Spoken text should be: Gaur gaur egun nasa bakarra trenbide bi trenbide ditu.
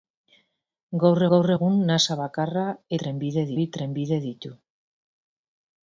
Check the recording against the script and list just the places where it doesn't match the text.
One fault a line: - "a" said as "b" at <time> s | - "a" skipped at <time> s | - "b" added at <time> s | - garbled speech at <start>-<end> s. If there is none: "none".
none